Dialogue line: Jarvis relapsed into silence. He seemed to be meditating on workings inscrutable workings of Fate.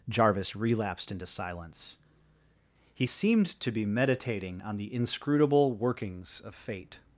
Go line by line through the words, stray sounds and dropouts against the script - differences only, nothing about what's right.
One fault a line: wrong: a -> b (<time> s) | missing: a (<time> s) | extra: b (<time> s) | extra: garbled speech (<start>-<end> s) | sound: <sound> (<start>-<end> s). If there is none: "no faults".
wrong: workings -> the (4.8 s)